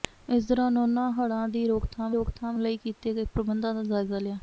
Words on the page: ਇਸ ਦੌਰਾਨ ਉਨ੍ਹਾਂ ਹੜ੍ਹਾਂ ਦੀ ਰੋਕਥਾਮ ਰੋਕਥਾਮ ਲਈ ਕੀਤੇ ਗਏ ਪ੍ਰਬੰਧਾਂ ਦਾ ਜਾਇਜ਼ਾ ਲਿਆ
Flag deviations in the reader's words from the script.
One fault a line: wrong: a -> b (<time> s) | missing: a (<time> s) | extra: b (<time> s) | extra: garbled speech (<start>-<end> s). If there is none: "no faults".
no faults